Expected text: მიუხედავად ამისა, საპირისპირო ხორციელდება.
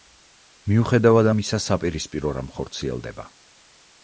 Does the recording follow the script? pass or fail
fail